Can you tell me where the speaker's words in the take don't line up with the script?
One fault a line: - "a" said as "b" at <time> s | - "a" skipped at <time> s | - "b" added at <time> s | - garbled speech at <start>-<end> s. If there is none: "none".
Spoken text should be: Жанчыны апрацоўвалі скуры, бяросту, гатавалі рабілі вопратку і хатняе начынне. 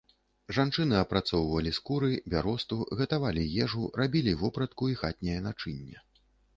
- "ежу" added at 3.7 s